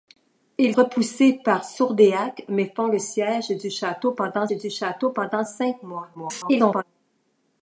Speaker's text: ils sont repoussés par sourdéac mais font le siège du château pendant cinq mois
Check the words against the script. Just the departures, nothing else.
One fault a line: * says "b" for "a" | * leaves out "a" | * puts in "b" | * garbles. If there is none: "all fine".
* leaves out "sont"
* puts in "du château pendant"
* garbles